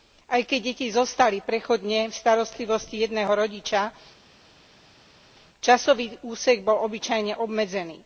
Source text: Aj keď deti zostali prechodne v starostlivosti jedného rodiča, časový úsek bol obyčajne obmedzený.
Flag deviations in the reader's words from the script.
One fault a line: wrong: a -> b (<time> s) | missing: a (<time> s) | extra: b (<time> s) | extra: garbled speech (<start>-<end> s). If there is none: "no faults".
no faults